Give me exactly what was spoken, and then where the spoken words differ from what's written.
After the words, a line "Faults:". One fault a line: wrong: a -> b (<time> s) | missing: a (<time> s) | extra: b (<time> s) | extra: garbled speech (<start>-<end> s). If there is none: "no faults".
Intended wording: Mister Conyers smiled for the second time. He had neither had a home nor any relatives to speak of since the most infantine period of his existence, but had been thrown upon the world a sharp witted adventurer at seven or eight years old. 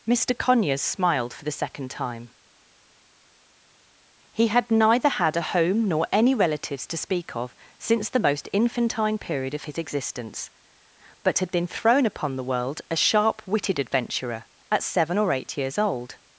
Mister Conyers smiled for the second time. He had neither had a home nor any relatives to speak of since the most infantine period of his existence, but had been thrown upon the world a sharp witted adventurer at seven or eight years old.
Faults:
no faults